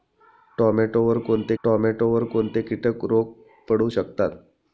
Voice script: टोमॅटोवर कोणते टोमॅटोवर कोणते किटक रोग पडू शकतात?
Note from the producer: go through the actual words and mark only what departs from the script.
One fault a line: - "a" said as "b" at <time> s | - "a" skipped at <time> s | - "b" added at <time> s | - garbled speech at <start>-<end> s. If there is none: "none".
none